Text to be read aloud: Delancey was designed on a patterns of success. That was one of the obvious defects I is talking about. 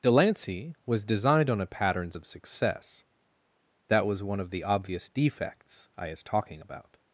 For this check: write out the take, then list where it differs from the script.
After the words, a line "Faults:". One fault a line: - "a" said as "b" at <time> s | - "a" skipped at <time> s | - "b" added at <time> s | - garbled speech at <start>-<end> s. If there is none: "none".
Delancey was designed on a patterns of success. That was one of the obvious defects I is talking about.
Faults:
none